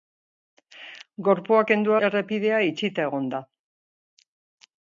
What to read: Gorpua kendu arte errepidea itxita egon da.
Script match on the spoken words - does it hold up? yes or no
no